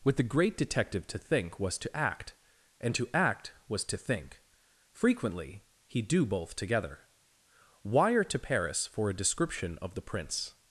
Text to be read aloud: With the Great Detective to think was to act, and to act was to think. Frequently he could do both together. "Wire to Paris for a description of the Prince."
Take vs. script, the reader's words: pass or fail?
fail